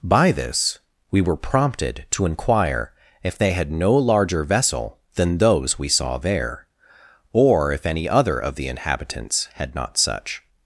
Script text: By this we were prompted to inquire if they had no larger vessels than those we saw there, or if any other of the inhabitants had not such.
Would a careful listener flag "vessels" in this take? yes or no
yes